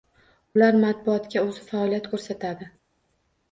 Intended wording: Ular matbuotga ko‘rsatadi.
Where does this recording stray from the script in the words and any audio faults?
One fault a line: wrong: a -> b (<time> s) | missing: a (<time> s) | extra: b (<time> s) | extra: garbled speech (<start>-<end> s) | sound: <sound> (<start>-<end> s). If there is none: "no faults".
extra: o‘zi faoliyat (1.5 s)